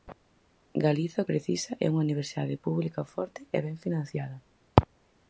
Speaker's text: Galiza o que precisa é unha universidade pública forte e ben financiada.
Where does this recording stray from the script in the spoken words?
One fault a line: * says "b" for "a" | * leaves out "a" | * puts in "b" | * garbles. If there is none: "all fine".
* leaves out "que"